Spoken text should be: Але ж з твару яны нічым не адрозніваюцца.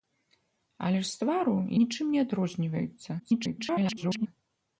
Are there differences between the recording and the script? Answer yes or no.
yes